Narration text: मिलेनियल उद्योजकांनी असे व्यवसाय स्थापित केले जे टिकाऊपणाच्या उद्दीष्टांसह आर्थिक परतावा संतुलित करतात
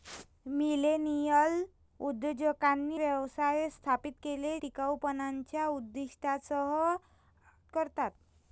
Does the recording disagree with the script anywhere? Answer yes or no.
yes